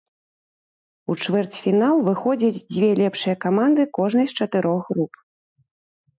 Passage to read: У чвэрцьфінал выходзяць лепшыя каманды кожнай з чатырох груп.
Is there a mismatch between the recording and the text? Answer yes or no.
yes